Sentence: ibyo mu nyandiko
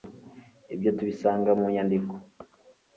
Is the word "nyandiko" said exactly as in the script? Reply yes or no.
yes